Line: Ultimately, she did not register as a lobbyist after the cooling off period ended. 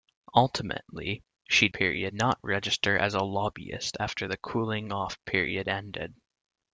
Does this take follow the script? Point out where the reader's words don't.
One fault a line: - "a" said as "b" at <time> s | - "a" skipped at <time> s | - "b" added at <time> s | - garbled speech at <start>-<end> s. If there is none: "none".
- "did" said as "period" at 1.7 s